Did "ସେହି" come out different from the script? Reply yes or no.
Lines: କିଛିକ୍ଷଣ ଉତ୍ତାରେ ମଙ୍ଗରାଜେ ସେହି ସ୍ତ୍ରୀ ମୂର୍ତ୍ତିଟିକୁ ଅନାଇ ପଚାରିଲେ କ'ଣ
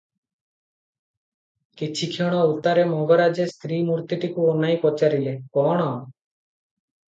yes